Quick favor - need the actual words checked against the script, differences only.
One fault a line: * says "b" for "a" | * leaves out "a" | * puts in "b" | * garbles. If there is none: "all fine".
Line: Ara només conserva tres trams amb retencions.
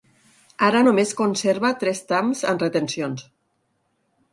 all fine